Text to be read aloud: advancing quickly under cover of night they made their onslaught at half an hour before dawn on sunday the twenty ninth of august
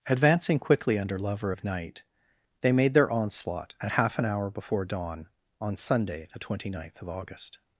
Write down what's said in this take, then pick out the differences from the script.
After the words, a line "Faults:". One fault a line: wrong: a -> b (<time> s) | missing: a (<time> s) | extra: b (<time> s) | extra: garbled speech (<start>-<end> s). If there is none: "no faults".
advancing quickly under lover of night they made their onslaught at half an hour before dawn on sunday the twenty ninth of august
Faults:
wrong: cover -> lover (1.2 s)